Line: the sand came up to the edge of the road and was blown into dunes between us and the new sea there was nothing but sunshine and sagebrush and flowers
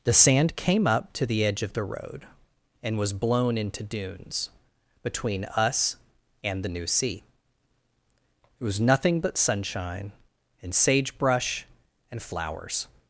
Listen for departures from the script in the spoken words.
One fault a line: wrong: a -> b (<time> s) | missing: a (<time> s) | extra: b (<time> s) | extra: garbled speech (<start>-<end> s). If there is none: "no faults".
wrong: there -> it (8.6 s)